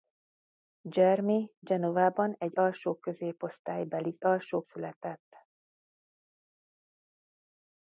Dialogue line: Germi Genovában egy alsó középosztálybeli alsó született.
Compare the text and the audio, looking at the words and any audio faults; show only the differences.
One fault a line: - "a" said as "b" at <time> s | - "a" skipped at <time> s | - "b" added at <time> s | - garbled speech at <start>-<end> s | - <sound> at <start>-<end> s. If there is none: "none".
none